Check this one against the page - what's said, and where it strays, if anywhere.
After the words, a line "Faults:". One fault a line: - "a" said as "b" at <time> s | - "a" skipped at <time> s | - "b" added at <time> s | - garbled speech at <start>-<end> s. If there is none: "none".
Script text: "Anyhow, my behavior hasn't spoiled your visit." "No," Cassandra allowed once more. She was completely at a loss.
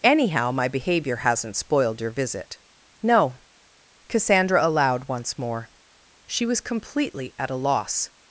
"Anyhow, my behavior hasn't spoiled your visit." "No," Cassandra allowed once more. She was completely at a loss.
Faults:
none